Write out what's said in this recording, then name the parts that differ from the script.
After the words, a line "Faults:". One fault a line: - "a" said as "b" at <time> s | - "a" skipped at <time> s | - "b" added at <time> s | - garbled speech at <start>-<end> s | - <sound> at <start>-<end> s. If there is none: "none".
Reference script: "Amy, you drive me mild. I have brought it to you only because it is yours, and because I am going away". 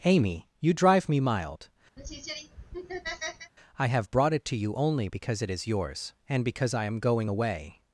"Amy, you drive me mild. I have brought it to you only because it is yours, and because I am going away".
Faults:
- laugh at 2.0-3.5 s